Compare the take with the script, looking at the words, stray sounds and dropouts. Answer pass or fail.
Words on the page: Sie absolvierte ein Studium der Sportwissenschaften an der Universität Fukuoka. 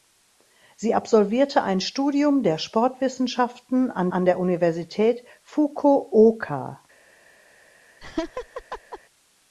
fail